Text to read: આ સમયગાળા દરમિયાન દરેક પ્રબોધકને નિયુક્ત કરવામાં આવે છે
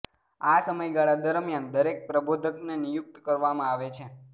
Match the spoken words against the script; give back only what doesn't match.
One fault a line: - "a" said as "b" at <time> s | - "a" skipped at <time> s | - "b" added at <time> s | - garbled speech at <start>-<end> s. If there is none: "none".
none